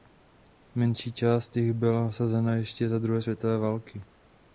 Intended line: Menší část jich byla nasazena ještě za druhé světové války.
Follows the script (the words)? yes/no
yes